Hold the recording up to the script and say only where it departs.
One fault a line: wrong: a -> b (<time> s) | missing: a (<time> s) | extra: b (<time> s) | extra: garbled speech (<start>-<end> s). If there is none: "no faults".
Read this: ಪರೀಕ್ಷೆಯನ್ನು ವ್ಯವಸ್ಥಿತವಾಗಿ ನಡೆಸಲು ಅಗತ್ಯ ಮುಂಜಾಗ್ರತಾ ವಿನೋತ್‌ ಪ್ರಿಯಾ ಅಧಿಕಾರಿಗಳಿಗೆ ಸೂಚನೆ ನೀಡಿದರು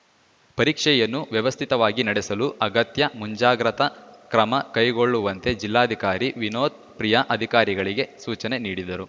extra: ಕ್ರಮ ಕೈಗೊಳ್ಳುವಂತೆ ಜಿಲ್ಲಾಧಿಕಾರಿ (4.3 s)